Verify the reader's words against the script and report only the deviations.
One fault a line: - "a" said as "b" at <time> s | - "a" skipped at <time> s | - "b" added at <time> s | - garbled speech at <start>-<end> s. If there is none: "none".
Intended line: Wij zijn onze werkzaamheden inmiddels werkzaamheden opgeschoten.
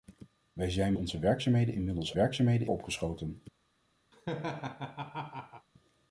none